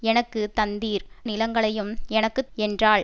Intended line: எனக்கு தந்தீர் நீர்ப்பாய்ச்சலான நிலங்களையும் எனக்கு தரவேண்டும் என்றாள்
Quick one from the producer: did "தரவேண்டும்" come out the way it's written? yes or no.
no